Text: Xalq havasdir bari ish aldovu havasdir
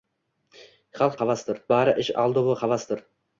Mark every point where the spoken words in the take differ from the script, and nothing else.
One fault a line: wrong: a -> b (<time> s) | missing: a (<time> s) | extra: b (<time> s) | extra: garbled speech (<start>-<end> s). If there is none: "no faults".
no faults